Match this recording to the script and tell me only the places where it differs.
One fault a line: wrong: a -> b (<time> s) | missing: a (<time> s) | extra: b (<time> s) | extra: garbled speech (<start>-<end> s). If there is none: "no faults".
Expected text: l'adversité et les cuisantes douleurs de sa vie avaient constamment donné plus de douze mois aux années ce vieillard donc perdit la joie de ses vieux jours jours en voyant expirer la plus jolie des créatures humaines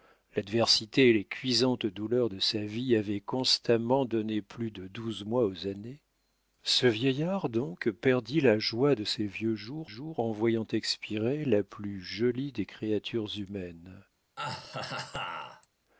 no faults